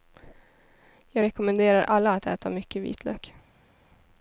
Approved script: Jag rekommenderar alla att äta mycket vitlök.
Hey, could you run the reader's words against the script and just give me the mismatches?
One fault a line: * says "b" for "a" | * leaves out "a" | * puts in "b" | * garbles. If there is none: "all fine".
all fine